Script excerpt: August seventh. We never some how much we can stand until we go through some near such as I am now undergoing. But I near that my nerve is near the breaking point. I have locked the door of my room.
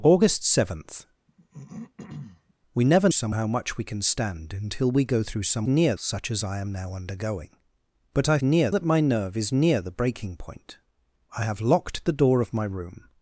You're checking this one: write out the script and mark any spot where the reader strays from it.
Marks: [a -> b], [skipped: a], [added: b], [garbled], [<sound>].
August seventh. [throat clearing] We never some how much we can stand until we go through some near such as I am now undergoing. But I near that my nerve is near the breaking point. I have locked the door of my room.